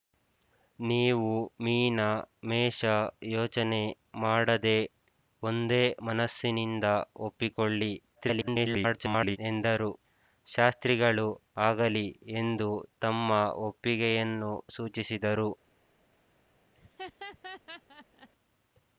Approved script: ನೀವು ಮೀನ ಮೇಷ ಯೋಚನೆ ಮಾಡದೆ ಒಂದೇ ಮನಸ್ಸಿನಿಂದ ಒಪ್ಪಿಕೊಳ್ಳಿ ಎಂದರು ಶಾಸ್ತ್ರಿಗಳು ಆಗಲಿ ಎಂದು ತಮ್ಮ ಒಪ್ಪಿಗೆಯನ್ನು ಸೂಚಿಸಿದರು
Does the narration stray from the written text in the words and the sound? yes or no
yes